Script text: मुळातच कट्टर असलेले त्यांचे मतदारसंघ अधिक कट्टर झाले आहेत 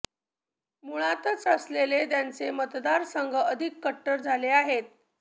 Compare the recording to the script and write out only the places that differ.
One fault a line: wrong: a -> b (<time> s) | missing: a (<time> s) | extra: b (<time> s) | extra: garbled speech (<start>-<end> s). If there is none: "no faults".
missing: कट्टर (1.4 s)